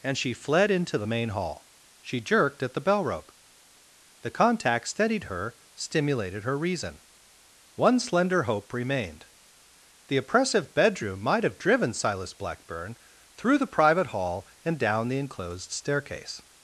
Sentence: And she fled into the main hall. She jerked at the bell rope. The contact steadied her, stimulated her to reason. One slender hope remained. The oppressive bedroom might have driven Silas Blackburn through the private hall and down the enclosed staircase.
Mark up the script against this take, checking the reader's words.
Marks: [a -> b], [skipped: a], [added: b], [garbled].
And she fled into the main hall. She jerked at the bell rope. The contact steadied her, stimulated her [skipped: to] reason. One slender hope remained. The oppressive bedroom might have driven Silas Blackburn through the private hall and down the enclosed staircase.